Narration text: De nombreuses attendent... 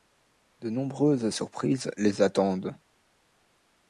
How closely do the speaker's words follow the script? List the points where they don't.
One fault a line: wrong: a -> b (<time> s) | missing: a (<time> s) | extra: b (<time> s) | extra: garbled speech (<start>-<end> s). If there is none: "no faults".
extra: surprises les (1.3 s)